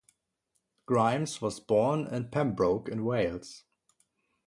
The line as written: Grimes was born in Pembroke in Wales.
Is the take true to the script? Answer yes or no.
yes